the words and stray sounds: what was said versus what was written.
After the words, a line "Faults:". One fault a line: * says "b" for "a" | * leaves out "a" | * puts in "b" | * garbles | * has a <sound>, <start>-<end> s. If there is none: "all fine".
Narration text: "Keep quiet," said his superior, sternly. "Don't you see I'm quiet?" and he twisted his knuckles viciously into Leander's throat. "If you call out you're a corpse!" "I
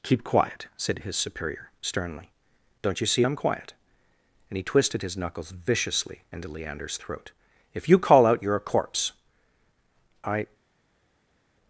"Keep quiet," said his superior, sternly. "Don't you see I'm quiet?" and he twisted his knuckles viciously into Leander's throat. "If you call out you're a corpse!" "I
Faults:
all fine